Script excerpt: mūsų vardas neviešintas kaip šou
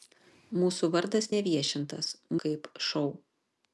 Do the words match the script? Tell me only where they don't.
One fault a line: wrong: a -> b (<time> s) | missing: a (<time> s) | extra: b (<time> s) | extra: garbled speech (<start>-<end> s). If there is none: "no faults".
no faults